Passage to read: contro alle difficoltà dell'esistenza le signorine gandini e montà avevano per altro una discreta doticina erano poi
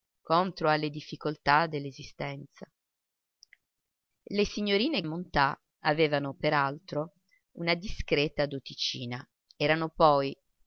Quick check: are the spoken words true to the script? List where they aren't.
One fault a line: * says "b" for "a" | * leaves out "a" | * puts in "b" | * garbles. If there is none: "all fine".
* leaves out "gandini"